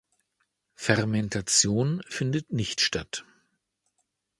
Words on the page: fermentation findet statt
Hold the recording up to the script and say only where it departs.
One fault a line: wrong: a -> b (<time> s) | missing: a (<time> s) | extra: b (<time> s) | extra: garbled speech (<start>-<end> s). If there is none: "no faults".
extra: nicht (2.5 s)